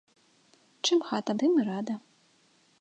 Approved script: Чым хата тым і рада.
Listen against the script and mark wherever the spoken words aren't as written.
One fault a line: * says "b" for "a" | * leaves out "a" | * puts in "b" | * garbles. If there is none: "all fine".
all fine